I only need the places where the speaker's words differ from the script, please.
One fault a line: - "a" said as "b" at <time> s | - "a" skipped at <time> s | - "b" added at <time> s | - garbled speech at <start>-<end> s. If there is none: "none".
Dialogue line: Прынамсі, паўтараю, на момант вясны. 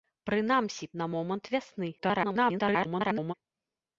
- "паўтараю" skipped at 0.9 s
- garbled speech at 2.0-3.3 s